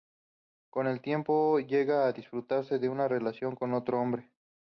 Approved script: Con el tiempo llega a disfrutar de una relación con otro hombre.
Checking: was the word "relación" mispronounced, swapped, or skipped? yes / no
no